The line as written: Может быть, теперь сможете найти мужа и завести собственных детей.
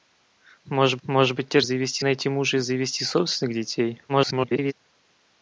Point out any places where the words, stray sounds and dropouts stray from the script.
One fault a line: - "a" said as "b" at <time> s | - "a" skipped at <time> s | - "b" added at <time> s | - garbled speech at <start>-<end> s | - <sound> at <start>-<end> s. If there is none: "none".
- "может" added at 1.0 s
- "сможете" said as "завести" at 1.6 s
- garbled speech at 4.1-4.7 s